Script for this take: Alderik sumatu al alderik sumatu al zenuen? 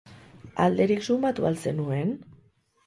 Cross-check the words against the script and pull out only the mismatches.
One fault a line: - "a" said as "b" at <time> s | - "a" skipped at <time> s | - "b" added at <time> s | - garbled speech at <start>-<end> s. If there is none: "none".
- "alderik sumatu al" skipped at 1.6 s